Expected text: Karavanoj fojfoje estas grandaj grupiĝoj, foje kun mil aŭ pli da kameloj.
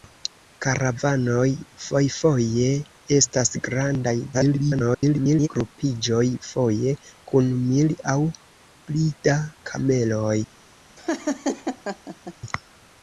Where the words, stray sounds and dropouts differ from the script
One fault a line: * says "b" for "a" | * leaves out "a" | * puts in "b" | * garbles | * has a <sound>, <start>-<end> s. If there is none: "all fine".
* garbles
* has a laugh, 11.0-12.3 s